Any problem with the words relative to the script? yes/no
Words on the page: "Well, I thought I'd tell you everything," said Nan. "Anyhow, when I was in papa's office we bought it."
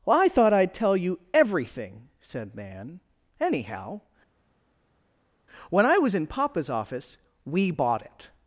no